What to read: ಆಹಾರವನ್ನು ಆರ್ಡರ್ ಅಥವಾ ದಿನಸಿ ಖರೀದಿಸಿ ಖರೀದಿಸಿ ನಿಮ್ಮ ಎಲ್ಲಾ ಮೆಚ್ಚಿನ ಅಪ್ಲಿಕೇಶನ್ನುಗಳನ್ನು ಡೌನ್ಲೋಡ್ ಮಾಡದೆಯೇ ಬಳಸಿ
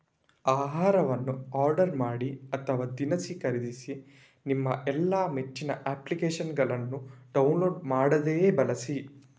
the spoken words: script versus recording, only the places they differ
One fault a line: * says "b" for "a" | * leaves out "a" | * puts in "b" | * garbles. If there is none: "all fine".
* puts in "ಮಾಡಿ"
* leaves out "ಖರೀದಿಸಿ"